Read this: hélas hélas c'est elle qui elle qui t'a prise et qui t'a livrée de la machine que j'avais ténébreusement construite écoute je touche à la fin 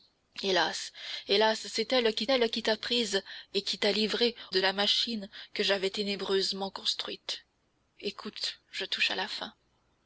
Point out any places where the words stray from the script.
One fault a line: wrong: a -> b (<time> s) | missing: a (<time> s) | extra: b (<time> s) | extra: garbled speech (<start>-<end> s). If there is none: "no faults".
no faults